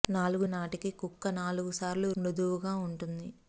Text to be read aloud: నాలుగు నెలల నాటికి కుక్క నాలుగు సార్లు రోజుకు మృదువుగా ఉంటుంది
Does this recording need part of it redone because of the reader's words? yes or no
yes